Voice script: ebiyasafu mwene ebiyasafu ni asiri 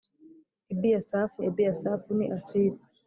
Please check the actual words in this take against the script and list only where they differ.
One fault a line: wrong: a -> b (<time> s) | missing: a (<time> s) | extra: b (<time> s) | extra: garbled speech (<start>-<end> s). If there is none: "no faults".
missing: mwene (1.4 s)